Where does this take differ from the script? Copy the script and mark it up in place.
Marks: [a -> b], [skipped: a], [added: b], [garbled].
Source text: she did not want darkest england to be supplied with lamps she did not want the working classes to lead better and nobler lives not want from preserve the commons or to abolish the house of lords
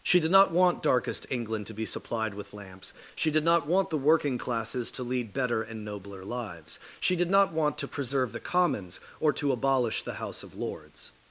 she did not want darkest england to be supplied with lamps she did not want the working classes to lead better and nobler lives [added: she did] not want [from -> to] preserve the commons or to abolish the house of lords